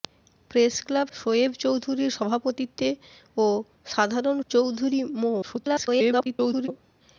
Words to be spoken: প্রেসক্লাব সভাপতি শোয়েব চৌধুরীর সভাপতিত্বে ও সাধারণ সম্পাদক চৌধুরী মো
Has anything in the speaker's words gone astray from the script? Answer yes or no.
yes